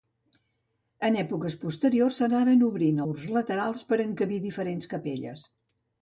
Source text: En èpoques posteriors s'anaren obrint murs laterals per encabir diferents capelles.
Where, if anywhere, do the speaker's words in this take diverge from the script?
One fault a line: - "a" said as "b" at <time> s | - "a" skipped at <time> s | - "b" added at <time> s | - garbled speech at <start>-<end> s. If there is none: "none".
none